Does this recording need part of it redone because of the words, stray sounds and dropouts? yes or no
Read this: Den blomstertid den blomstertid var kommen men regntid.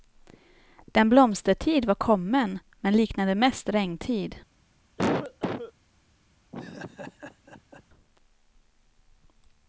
yes